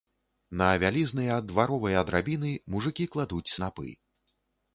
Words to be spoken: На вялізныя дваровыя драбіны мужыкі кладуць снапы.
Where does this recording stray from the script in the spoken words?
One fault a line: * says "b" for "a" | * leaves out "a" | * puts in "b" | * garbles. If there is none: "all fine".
all fine